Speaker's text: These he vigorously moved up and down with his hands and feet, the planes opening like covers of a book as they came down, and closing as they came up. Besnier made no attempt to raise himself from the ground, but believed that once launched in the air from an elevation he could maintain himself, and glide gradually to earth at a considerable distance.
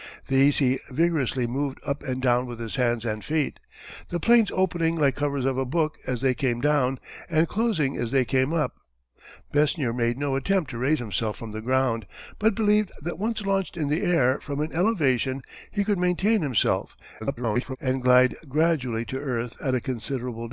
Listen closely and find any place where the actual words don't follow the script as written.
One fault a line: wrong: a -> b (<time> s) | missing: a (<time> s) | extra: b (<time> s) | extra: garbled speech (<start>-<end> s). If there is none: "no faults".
extra: garbled speech (17.2-17.8 s)